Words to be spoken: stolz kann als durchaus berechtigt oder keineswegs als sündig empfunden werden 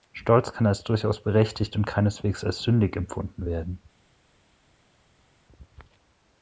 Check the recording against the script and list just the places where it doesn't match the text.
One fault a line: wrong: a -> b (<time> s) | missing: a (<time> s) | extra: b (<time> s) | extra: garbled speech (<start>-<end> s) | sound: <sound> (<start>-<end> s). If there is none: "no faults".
wrong: oder -> und (1.8 s)